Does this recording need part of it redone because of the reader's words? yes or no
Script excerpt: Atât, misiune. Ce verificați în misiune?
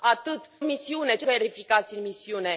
no